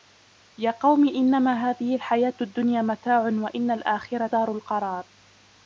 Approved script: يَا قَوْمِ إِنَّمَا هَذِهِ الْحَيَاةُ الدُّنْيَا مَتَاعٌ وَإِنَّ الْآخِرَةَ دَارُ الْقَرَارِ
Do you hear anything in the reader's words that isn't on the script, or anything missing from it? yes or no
no